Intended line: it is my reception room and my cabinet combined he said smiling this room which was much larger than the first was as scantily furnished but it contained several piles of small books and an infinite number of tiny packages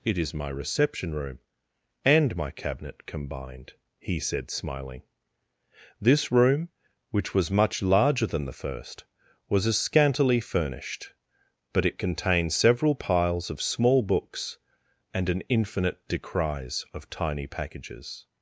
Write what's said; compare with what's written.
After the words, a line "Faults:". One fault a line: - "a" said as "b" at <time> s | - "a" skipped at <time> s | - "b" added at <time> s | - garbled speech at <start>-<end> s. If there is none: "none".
it is my reception room and my cabinet combined he said smiling this room which was much larger than the first was as scantily furnished but it contained several piles of small books and an infinite decries of tiny packages
Faults:
- "number" said as "decries" at 16.1 s